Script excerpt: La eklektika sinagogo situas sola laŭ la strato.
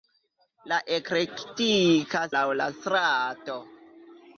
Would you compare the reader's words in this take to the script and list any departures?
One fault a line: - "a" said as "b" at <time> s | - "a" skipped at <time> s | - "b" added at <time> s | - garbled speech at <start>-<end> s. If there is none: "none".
- "sinagogo situas sola" skipped at 2.2 s